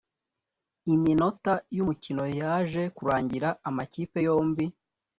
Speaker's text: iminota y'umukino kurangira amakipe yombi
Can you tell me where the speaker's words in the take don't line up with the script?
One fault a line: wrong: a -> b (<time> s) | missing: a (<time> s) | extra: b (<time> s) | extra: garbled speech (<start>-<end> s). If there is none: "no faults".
extra: yaje (2.4 s)